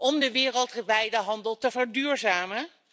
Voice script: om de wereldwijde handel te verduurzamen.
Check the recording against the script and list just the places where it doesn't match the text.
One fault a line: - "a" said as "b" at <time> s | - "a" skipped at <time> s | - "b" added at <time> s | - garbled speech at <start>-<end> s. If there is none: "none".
none